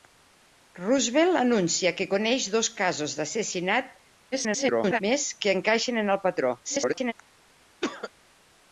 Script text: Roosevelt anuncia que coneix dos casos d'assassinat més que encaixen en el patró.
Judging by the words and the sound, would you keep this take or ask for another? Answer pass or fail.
fail